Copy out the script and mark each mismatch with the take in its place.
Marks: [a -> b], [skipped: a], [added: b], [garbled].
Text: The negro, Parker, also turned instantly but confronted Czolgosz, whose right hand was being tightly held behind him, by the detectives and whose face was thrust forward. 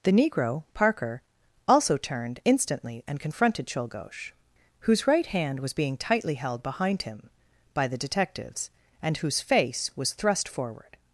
The negro, Parker, also turned instantly [but -> and] confronted Czolgosz, whose right hand was being tightly held behind him, by the detectives and whose face was thrust forward.